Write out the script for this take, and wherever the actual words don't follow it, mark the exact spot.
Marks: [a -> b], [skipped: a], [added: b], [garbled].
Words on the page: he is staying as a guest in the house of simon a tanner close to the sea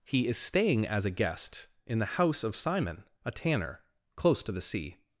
he is staying as a guest in the house of simon a tanner close to the sea